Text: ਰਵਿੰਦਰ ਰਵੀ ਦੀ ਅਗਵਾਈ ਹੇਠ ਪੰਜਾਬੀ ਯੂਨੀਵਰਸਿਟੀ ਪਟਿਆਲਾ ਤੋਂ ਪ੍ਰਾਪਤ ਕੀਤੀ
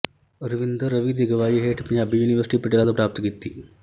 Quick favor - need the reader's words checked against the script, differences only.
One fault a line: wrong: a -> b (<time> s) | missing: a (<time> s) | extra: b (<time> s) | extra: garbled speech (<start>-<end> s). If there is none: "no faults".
no faults